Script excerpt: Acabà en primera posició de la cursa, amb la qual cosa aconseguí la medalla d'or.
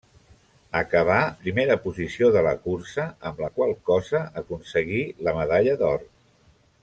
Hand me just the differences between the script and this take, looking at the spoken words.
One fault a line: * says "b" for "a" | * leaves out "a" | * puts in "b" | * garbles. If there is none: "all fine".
* leaves out "en"